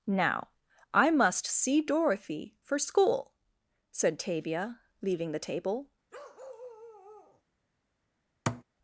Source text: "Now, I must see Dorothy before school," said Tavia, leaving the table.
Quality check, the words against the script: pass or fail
fail